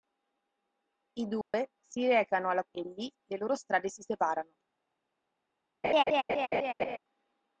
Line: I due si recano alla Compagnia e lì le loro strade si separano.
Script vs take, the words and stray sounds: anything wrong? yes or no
yes